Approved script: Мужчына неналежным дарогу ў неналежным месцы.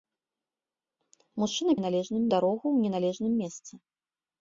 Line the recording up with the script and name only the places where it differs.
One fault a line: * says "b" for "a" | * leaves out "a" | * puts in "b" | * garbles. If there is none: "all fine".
all fine